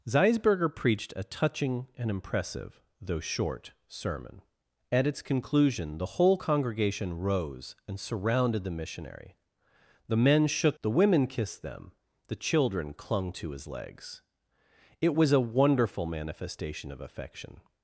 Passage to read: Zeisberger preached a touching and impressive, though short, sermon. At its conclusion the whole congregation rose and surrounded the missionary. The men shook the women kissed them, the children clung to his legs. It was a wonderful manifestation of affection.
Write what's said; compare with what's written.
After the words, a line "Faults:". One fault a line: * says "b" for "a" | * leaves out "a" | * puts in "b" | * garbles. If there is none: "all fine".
Zeisberger preached a touching and impressive, though short, sermon. At its conclusion the whole congregation rose and surrounded the missionary. The men shook the women kissed them, the children clung to his legs. It was a wonderful manifestation of affection.
Faults:
all fine